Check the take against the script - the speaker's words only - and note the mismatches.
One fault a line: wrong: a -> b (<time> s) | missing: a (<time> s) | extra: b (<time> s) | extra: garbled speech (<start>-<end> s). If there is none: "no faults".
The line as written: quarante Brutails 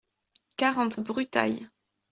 no faults